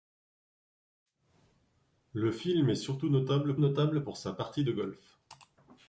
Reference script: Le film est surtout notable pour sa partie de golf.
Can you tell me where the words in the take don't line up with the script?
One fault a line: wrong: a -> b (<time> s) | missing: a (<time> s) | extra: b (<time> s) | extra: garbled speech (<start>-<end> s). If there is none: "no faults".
extra: notable (3.6 s)